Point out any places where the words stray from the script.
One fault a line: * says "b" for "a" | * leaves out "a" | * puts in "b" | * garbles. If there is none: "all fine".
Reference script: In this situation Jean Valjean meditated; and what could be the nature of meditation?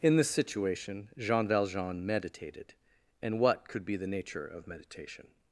all fine